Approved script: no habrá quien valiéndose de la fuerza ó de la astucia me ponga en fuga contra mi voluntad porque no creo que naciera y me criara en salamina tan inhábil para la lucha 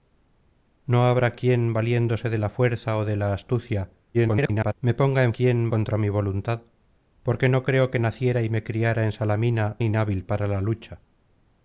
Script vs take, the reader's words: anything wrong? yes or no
yes